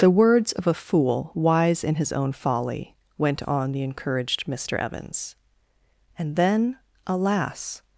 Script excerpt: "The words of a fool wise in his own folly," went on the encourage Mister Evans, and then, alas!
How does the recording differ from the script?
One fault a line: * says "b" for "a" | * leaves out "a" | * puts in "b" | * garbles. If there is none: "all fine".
* says "encouraged" for "encourage"